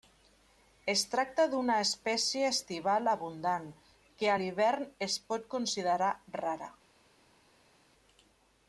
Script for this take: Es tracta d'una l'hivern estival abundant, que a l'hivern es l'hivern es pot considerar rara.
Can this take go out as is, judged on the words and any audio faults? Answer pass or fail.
fail